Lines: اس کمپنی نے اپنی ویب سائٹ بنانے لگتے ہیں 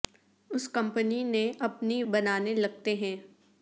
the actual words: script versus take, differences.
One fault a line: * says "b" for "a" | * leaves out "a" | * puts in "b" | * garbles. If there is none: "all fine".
* leaves out "ویب سائٹ"